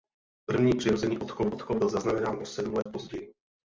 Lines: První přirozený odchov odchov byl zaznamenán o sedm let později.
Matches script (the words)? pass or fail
pass